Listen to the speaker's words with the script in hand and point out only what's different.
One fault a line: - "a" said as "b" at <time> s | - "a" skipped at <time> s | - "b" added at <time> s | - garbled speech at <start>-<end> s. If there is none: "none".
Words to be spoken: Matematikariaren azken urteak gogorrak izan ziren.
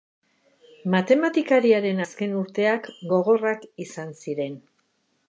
none